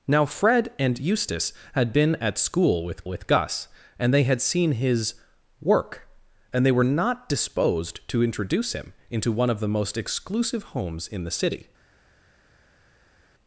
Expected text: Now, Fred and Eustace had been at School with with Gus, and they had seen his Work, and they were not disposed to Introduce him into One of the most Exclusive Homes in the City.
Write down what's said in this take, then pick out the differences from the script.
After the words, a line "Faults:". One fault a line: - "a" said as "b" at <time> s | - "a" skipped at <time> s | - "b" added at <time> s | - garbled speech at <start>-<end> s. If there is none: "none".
Now, Fred and Eustace had been at School with with Gus, and they had seen his Work, and they were not disposed to Introduce him into One of the most Exclusive Homes in the City.
Faults:
none